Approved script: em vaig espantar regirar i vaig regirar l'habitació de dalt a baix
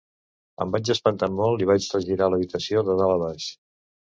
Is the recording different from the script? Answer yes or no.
yes